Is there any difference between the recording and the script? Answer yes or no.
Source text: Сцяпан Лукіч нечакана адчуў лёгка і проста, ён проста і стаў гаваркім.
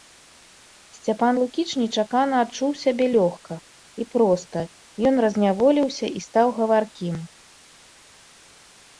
yes